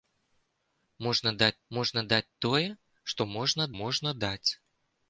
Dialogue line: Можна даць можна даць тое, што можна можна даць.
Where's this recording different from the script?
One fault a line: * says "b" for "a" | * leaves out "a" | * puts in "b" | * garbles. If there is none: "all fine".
all fine